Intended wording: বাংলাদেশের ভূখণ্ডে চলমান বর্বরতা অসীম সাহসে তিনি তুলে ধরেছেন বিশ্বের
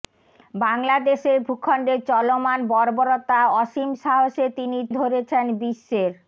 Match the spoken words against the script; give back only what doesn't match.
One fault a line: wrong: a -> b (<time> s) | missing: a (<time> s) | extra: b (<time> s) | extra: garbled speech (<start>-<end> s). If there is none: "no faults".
missing: তুলে (4.8 s)